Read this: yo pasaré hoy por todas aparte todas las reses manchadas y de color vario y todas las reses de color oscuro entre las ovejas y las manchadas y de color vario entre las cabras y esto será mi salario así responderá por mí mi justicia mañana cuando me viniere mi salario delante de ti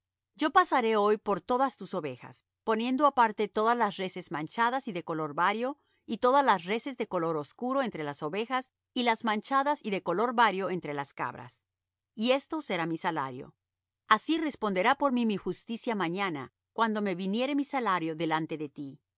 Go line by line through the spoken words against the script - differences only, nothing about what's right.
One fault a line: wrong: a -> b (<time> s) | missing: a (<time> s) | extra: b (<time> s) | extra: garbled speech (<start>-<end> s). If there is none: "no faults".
extra: tus ovejas poniendo (1.8 s)